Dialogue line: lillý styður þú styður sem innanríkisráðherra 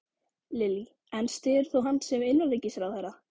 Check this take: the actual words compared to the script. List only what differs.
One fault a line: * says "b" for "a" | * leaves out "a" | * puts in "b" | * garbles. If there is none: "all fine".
* puts in "en"
* says "hann" for "styður"